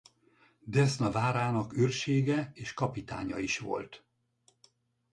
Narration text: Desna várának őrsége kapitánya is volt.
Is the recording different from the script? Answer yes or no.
yes